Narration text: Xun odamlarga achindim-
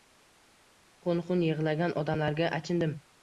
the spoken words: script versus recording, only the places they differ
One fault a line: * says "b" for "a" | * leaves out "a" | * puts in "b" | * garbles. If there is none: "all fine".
* puts in "xun yig‘-lagan"